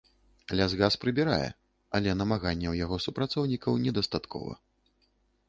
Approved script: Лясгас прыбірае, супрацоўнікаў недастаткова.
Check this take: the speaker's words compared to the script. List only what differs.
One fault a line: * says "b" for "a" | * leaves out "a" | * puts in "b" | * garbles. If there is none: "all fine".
* puts in "але намаганняў яго"